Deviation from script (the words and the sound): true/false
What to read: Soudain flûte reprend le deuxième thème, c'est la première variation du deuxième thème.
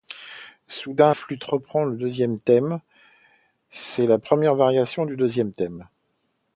false